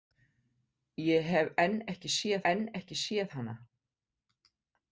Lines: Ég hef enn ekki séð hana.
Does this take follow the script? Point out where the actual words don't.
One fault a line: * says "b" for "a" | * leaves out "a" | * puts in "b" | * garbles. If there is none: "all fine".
* puts in "enn ekki séð"